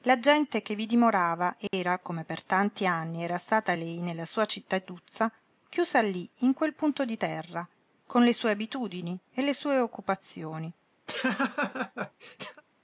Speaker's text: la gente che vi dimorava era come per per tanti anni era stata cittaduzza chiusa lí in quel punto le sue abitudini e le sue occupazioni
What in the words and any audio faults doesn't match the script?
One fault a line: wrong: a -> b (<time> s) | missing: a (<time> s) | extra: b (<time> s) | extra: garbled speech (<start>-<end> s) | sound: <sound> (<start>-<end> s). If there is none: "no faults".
sound: dropout (1.7-1.7 s)
missing: per (2.4 s)
extra: lei nella sua (3.7 s)
extra: di terra con (7.0 s)
sound: laugh (11.1-12.6 s)